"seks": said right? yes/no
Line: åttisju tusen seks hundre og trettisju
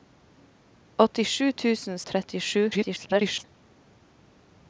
no